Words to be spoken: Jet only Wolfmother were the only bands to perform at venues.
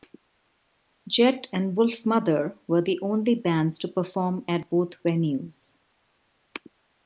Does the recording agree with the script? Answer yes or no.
no